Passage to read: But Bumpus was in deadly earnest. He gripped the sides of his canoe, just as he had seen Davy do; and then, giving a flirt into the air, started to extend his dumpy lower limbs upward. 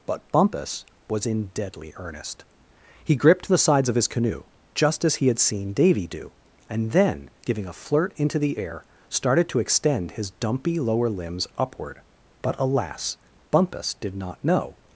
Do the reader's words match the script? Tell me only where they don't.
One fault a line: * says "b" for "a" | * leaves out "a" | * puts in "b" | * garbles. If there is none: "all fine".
* puts in "But alas Bumpus did not know"